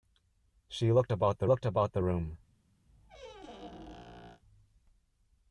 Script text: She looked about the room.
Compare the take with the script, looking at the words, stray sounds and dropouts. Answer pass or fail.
fail